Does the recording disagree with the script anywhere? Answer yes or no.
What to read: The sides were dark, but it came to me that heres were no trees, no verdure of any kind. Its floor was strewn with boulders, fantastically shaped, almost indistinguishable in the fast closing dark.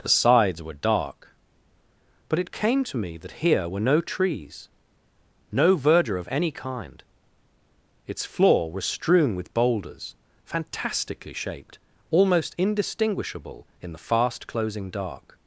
yes